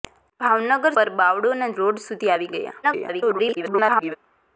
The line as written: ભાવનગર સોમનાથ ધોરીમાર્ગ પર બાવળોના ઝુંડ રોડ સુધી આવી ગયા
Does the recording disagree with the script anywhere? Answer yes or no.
yes